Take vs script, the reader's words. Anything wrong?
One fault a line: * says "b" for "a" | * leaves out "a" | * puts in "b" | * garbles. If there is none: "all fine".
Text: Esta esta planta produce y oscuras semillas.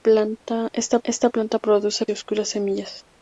all fine